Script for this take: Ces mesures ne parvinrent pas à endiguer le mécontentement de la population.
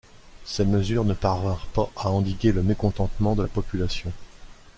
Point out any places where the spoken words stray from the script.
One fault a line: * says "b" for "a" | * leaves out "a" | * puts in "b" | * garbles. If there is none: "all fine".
all fine